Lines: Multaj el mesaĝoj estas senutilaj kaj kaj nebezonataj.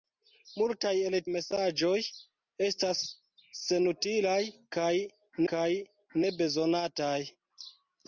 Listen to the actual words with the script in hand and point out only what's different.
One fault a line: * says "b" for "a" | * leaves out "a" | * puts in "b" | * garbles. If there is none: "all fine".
all fine